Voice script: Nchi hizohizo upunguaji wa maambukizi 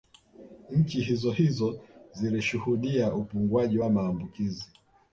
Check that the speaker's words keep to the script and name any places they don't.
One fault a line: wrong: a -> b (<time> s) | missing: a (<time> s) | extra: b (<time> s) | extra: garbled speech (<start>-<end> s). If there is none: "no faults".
extra: zilishuhudia (2.1 s)